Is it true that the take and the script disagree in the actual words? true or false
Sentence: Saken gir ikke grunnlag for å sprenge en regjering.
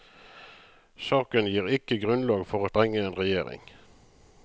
false